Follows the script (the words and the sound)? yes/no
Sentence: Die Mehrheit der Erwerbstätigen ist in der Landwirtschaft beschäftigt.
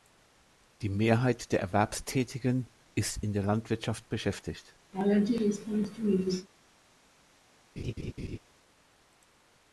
no